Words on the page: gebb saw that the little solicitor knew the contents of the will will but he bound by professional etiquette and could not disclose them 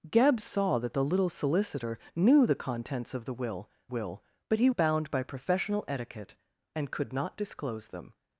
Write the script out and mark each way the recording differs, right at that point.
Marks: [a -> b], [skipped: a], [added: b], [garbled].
gebb saw that the little solicitor knew the contents of the will will but he bound by professional etiquette and could not disclose them